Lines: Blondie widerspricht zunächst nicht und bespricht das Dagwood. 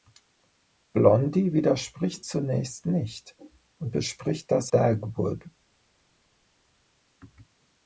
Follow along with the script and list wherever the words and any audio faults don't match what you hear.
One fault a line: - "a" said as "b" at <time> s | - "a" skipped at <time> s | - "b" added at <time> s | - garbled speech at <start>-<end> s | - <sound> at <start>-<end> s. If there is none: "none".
none